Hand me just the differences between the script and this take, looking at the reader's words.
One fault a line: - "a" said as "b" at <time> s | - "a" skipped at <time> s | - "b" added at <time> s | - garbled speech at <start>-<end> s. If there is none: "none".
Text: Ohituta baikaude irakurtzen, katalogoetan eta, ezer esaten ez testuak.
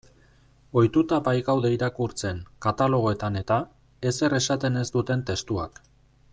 - "duten" added at 5.0 s